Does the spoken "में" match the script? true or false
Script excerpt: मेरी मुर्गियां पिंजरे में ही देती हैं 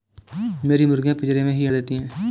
true